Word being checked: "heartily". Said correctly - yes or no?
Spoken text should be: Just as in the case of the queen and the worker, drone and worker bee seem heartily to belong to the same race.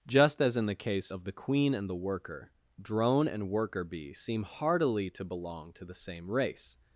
yes